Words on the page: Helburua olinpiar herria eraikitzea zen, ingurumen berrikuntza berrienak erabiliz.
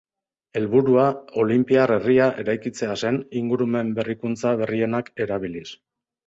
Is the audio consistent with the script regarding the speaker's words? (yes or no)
yes